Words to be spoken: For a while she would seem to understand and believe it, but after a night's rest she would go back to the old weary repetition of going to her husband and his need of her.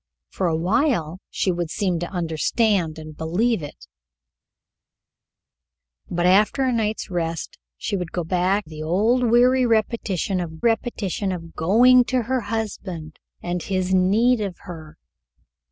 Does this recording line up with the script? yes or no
no